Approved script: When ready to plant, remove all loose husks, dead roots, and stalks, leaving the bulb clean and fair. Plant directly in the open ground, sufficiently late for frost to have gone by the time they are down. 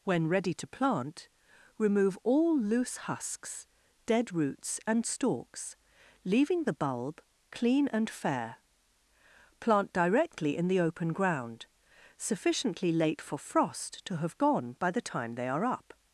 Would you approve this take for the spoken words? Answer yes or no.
no